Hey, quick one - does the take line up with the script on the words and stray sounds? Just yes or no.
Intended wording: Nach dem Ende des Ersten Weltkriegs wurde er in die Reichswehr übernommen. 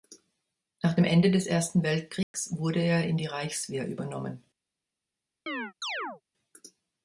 no